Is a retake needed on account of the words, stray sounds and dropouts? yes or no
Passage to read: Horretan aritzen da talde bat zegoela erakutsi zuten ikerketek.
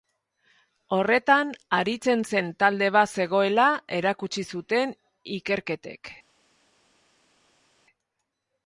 yes